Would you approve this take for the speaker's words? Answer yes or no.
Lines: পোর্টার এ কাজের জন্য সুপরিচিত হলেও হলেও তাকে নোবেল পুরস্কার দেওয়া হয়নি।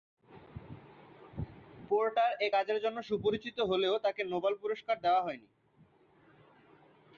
no